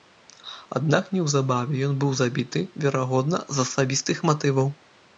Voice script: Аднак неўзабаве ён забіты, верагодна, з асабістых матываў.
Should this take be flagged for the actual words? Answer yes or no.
yes